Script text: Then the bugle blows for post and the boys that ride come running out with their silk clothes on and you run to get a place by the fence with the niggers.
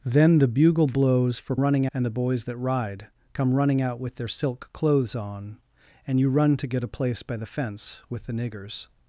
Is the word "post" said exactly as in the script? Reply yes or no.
no